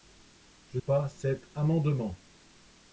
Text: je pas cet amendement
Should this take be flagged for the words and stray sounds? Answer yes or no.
no